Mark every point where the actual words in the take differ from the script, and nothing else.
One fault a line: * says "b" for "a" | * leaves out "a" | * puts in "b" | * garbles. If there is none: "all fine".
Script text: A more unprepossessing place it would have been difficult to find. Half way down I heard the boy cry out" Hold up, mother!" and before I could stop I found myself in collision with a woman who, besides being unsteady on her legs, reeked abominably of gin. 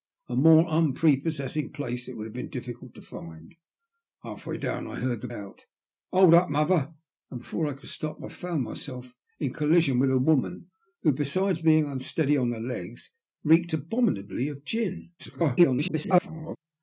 * leaves out "boy cry"
* garbles